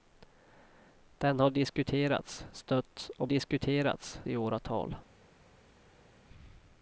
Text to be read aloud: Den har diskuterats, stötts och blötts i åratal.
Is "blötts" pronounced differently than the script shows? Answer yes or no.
yes